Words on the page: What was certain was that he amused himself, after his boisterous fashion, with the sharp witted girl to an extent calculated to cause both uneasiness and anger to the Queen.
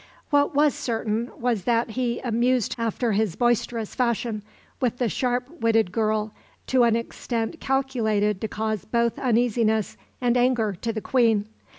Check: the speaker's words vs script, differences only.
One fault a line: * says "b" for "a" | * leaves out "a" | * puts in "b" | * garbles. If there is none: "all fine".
* leaves out "himself"